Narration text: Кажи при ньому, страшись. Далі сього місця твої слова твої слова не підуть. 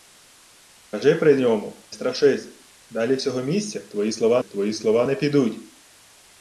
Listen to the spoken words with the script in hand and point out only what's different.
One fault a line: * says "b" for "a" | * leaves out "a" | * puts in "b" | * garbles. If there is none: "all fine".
all fine